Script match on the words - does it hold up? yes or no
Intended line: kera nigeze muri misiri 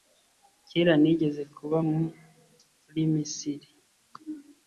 no